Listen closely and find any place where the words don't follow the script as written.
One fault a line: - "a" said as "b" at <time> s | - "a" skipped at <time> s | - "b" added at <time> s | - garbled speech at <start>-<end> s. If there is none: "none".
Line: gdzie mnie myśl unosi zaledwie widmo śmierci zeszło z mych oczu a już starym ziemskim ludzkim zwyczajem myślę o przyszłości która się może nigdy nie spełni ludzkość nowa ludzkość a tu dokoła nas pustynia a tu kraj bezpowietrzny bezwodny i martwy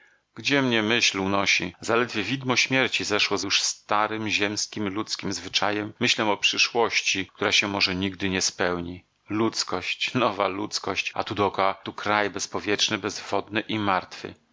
- "mych oczu a" skipped at 3.5 s
- "nas pustynia a" skipped at 11.8 s